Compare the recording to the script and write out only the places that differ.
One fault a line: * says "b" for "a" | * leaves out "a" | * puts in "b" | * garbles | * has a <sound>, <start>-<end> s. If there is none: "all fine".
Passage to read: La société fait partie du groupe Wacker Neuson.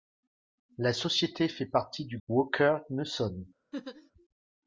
* leaves out "groupe"
* has a laugh, 3.7-4.1 s